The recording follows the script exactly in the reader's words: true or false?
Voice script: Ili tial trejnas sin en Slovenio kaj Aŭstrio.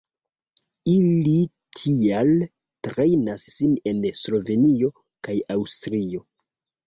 true